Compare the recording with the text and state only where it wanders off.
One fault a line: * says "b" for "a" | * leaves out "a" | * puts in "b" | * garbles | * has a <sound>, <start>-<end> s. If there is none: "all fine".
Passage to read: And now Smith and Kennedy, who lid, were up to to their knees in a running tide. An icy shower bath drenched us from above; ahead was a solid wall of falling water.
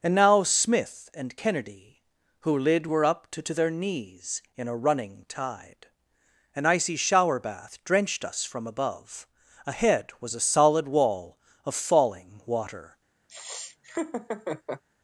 * has a laugh, 13.3-14.8 s